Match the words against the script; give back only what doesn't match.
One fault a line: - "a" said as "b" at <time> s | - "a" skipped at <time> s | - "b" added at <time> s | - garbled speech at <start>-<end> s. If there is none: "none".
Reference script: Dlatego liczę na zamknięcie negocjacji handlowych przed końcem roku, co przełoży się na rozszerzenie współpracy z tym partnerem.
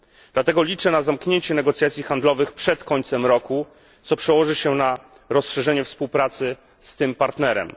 none